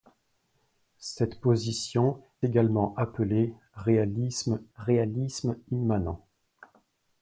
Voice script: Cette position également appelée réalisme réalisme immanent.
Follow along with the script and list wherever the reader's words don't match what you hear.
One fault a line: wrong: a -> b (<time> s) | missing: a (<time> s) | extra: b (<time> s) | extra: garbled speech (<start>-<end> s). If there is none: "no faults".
no faults